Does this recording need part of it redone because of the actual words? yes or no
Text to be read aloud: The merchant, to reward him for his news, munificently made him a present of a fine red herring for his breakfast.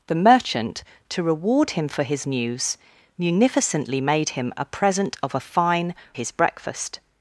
yes